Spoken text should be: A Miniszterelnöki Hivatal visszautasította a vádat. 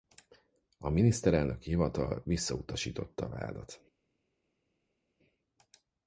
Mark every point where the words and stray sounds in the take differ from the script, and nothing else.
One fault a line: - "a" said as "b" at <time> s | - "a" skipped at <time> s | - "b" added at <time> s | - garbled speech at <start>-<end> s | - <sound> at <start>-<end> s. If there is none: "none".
none